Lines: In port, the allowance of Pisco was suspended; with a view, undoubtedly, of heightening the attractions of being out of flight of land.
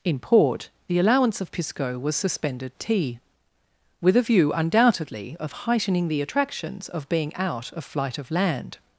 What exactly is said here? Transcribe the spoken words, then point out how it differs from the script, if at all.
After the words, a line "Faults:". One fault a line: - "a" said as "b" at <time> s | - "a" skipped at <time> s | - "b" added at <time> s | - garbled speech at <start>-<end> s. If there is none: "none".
In port, the allowance of Pisco was suspended; tea with a view, undoubtedly, of heightening the attractions of being out of flight of land.
Faults:
- "tea" added at 2.8 s